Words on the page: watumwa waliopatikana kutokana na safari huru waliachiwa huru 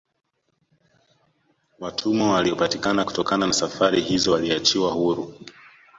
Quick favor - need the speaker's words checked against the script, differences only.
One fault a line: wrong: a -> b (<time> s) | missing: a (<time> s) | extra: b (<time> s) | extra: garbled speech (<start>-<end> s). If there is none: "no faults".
wrong: huru -> hizo (4.0 s)